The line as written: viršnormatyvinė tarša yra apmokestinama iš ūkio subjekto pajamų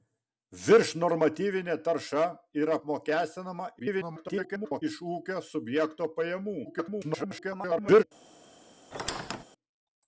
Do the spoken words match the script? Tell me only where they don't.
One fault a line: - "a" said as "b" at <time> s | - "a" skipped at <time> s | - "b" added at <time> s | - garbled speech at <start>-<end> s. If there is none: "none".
- garbled speech at 3.8-4.8 s
- garbled speech at 6.6-8.0 s